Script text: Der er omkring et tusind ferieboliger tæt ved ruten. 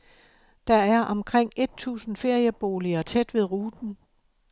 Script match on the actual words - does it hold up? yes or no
yes